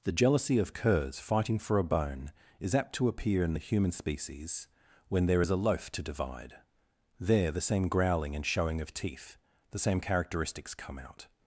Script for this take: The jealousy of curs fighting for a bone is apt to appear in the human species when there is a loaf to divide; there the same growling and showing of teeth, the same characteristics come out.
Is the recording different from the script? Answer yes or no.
no